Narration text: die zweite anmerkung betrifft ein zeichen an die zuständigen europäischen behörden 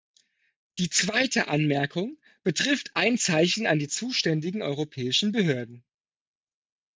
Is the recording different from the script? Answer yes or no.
no